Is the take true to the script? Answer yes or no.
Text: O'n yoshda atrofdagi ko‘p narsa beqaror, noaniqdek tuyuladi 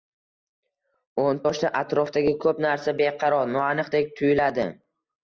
yes